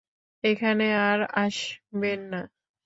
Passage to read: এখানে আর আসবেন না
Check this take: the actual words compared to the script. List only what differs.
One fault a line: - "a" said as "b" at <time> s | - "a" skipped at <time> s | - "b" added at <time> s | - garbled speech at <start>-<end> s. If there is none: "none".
none